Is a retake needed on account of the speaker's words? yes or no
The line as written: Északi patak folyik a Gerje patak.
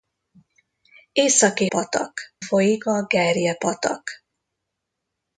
no